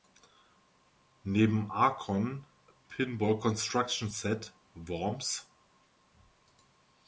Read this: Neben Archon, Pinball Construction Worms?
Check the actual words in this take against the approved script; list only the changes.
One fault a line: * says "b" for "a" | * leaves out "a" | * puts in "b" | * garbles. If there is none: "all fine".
* puts in "Set"